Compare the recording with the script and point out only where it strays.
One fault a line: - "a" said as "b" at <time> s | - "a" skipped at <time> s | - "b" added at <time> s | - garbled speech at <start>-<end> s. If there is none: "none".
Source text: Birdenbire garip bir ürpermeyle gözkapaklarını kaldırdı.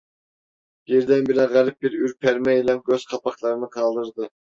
none